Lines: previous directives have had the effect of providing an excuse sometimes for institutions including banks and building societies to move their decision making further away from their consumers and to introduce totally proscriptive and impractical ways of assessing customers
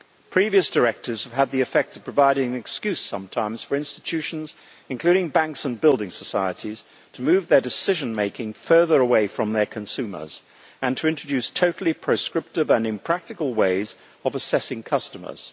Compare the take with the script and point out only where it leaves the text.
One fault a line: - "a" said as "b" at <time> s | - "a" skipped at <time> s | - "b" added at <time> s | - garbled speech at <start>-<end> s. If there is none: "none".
none